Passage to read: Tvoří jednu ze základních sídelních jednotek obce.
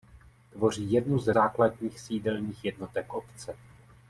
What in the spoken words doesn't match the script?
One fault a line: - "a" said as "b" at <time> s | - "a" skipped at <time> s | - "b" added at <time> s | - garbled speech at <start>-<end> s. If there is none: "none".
none